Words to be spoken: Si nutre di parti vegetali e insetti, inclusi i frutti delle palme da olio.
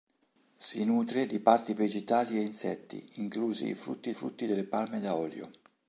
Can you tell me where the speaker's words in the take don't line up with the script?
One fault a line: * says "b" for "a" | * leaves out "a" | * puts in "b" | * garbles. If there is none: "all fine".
* puts in "frutti"